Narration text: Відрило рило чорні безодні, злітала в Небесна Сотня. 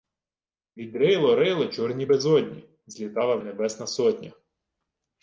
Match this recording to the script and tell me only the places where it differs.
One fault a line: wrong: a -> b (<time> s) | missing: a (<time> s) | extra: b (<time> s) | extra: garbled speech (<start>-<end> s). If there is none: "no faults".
no faults